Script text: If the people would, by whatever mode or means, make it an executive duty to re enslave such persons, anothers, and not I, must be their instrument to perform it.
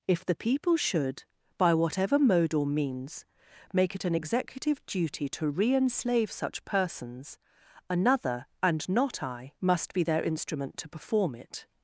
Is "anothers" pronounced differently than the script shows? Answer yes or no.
yes